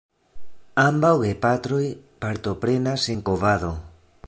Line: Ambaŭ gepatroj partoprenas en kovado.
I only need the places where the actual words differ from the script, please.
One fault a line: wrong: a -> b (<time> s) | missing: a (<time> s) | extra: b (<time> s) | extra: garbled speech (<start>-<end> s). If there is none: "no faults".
no faults